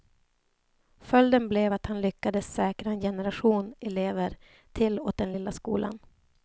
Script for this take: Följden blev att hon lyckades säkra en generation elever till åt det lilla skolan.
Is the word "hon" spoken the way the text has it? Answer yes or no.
no